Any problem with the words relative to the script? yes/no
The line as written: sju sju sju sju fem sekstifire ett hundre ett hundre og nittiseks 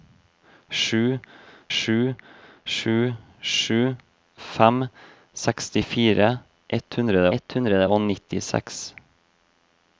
no